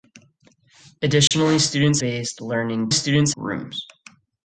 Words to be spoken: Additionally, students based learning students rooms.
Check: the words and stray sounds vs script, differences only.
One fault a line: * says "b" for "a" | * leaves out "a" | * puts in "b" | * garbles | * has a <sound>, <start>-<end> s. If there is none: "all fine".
* has a dropout, 1.3-1.3 s